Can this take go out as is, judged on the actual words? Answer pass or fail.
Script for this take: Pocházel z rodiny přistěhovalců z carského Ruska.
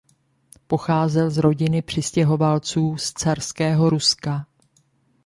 pass